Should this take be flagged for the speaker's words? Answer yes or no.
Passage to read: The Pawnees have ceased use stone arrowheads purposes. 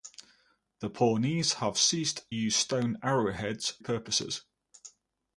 no